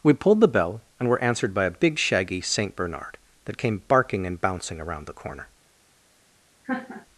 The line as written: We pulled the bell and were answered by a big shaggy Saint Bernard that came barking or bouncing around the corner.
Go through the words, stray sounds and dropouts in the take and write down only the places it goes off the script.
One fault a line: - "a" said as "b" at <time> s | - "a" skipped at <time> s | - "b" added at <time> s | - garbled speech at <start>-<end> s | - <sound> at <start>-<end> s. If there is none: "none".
- "or" said as "and" at 4.3 s
- laugh at 6.6-7.1 s